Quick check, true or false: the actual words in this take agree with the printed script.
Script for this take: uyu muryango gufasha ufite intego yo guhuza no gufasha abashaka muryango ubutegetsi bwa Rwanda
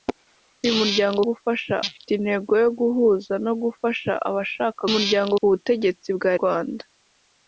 true